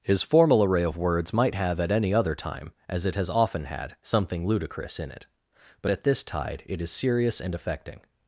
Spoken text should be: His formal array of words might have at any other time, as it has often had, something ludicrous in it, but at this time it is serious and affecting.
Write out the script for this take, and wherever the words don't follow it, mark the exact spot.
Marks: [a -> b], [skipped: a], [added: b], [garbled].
His formal array of words might have at any other time, as it has often had, something ludicrous in it, but at this [time -> tide] it is serious and affecting.